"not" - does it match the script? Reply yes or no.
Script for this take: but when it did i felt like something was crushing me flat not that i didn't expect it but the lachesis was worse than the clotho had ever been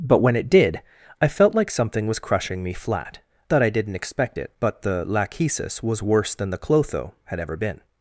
no